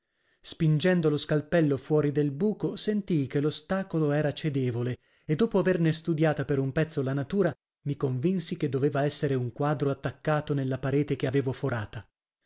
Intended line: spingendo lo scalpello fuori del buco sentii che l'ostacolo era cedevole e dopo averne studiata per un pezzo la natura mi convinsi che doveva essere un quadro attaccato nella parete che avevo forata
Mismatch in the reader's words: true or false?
false